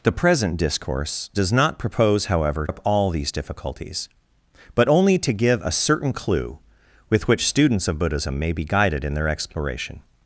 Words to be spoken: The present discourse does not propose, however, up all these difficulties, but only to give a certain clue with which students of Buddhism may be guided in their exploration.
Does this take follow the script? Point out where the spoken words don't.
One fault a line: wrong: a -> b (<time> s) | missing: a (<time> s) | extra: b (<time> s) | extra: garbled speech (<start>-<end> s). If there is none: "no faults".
no faults